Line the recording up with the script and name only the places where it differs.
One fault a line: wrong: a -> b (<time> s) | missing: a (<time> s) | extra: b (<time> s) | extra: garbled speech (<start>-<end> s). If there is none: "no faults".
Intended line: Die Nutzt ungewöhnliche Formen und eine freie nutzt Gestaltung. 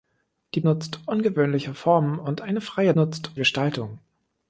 no faults